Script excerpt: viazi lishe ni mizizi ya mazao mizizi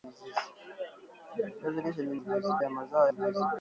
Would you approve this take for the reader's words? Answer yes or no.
yes